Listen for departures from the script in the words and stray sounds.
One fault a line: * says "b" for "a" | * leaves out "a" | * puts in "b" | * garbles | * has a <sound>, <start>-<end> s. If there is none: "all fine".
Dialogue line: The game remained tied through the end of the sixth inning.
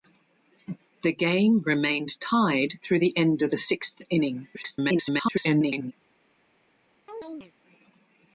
* garbles
* has a chirp, 7.1-7.5 s